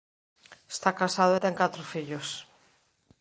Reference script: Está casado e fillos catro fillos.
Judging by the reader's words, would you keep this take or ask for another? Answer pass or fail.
fail